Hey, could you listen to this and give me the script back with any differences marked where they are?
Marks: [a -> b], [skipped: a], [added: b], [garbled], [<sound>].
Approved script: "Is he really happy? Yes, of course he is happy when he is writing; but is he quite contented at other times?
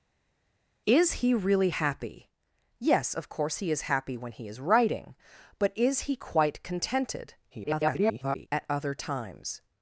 "Is he really happy? Yes, of course he is happy when he is writing; but is he quite contented [garbled] at other times?